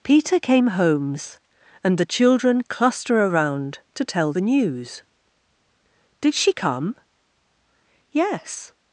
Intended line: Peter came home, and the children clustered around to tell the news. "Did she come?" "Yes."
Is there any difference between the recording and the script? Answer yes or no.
yes